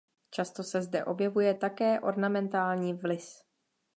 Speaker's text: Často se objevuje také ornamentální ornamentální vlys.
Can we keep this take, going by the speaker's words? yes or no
no